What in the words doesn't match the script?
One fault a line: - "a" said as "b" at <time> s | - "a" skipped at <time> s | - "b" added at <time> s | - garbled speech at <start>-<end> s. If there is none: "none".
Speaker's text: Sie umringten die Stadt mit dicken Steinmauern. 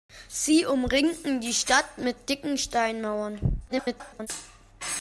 - garbled speech at 3.7-4.3 s